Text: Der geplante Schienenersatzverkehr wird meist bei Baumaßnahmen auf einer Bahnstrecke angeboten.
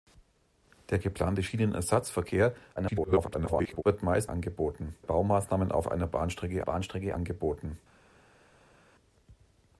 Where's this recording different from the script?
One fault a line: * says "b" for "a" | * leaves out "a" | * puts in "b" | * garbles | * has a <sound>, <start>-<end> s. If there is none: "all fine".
* garbles
* says "angeboten" for "bei"
* puts in "Bahnstrecke"